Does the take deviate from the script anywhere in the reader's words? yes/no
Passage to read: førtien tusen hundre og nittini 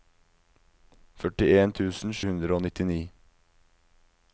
no